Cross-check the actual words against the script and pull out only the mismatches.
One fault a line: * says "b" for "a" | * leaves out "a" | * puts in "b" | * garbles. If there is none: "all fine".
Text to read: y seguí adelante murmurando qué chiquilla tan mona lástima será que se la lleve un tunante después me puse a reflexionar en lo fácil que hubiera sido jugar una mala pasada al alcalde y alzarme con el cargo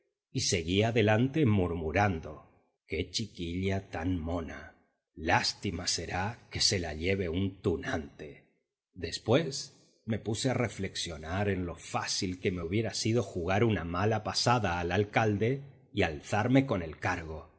* puts in "me"